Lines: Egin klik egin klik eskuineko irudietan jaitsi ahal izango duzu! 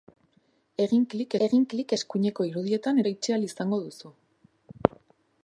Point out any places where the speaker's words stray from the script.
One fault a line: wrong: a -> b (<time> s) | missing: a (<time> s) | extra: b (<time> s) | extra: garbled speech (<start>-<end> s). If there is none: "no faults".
no faults